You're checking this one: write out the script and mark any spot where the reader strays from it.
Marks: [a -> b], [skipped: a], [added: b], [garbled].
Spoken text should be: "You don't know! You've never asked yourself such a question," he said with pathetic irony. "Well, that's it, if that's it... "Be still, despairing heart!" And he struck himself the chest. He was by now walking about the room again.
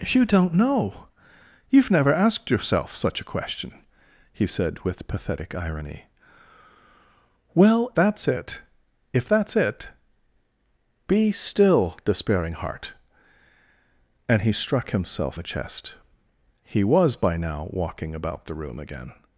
"You don't know! You've never asked yourself such a question," he said with pathetic irony. "Well, that's it, if that's it... "Be still, despairing heart!" And he struck himself the chest. He was by now walking about the room again.